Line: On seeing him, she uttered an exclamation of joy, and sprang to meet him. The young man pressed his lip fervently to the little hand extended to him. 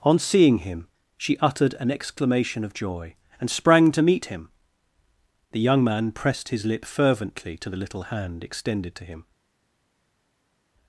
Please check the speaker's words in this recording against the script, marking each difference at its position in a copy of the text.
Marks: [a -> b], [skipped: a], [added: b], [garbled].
On seeing him, she uttered an exclamation of joy, and sprang to meet him. The young man pressed his lip fervently to the little hand extended to him.